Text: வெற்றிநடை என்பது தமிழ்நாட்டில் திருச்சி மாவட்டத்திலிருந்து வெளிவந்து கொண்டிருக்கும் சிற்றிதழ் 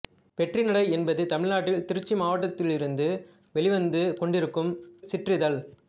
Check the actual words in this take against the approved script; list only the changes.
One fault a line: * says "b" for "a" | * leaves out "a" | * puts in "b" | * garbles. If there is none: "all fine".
all fine